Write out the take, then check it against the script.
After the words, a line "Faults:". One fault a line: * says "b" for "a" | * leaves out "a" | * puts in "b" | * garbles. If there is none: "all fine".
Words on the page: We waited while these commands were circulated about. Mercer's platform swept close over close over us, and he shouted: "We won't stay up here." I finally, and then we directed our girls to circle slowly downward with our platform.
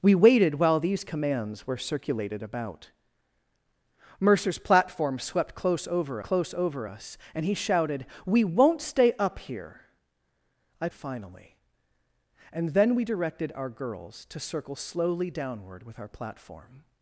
We waited while these commands were circulated about. Mercer's platform swept close over close over us, and he shouted: "We won't stay up here." I finally, and then we directed our girls to circle slowly downward with our platform.
Faults:
all fine